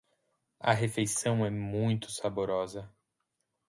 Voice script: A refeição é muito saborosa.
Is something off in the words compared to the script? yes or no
no